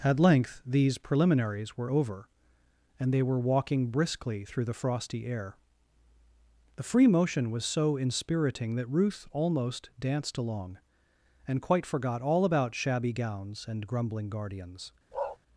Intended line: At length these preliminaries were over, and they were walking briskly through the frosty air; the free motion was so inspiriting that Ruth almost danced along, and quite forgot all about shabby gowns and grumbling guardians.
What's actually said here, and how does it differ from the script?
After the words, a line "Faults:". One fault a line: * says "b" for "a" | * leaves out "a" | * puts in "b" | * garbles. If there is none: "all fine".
At length these preliminaries were over, and they were walking briskly through the frosty air; the free motion was so inspiriting that Ruth almost danced along, and quite forgot all about shabby gowns and grumbling guardians.
Faults:
all fine